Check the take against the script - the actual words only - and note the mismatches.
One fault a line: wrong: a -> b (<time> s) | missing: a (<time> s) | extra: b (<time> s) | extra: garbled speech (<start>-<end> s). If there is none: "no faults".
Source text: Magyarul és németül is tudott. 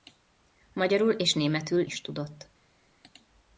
no faults